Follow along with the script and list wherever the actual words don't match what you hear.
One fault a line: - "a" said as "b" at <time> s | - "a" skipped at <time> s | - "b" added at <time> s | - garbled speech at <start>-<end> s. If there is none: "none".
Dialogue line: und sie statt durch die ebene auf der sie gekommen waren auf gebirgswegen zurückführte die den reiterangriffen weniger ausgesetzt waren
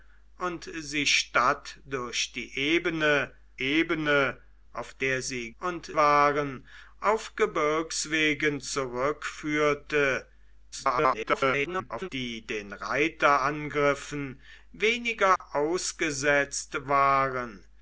- "ebene" added at 3.6 s
- "gekommen" said as "und" at 5.6 s
- garbled speech at 10.7-12.1 s